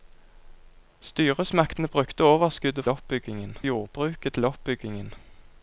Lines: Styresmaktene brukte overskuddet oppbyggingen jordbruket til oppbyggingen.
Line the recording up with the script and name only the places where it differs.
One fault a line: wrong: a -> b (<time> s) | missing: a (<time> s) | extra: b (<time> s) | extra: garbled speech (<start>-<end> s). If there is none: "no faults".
no faults